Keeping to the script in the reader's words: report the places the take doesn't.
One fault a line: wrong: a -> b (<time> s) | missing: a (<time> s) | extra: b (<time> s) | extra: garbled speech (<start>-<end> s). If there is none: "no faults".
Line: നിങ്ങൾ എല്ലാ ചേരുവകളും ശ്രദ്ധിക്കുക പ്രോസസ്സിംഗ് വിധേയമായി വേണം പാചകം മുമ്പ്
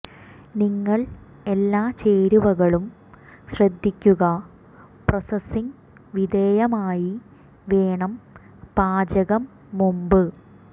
no faults